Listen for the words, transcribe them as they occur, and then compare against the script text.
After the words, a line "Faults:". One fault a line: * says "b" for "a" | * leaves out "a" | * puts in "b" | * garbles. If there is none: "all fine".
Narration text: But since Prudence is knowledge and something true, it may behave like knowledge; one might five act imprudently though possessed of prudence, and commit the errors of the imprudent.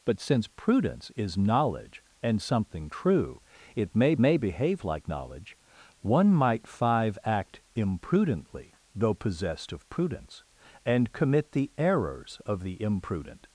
But since Prudence is knowledge and something true, it may may behave like knowledge; one might five act imprudently though possessed of prudence, and commit the errors of the imprudent.
Faults:
* puts in "may"